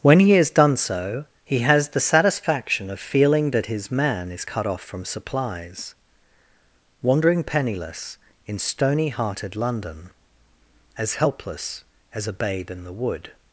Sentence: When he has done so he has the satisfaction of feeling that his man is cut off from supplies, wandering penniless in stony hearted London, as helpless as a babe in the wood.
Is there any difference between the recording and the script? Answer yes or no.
no